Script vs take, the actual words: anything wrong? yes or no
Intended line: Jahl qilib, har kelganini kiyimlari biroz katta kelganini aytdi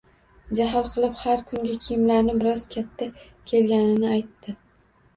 yes